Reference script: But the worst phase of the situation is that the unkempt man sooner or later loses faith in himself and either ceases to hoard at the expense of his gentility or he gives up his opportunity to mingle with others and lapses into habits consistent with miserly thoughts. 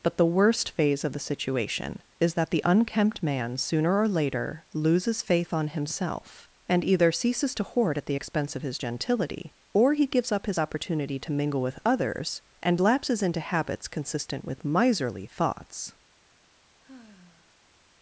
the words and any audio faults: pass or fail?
fail